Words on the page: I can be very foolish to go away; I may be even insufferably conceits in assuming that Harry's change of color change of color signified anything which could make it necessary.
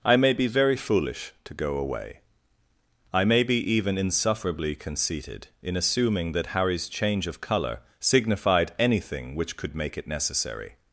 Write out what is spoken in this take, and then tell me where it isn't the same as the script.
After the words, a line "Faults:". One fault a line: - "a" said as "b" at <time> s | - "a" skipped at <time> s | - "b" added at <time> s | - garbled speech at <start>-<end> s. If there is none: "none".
I may be very foolish to go away; I may be even insufferably conceited in assuming that Harry's change of color signified anything which could make it necessary.
Faults:
- "can" said as "may" at 0.2 s
- "conceits" said as "conceited" at 4.7 s
- "change of color" skipped at 7.8 s